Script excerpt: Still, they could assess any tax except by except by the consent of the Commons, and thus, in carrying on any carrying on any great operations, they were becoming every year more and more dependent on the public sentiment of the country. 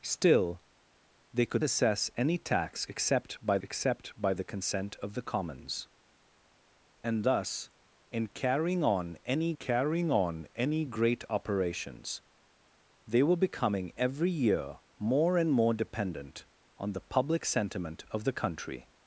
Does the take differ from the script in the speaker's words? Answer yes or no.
no